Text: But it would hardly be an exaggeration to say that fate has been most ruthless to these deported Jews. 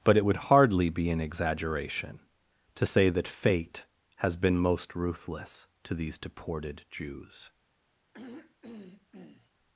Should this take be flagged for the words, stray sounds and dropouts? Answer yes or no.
yes